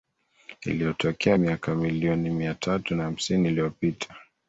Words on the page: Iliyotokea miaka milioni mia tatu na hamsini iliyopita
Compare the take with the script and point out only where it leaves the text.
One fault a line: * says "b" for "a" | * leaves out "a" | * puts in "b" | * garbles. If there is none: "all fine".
all fine